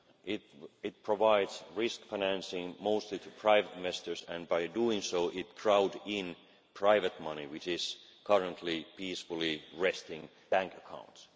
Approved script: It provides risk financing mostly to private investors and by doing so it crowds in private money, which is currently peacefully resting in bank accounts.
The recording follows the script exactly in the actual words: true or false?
false